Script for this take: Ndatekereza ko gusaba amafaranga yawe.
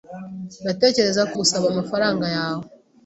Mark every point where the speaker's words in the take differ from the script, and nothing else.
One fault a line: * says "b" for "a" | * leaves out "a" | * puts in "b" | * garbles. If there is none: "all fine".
all fine